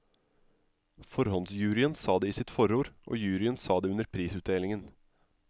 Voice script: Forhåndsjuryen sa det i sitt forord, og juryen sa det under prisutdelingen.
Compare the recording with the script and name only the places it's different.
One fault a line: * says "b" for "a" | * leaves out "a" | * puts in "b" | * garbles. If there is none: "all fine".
all fine